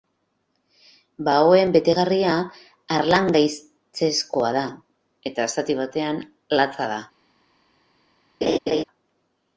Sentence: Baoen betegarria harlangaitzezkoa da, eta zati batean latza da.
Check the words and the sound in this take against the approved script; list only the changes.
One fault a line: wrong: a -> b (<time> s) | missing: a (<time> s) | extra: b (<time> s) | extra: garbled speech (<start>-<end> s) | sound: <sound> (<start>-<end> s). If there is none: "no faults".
sound: laugh (8.4-8.8 s)